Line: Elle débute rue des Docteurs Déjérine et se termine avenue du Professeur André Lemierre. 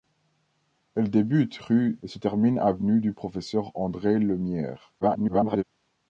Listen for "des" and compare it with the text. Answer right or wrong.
wrong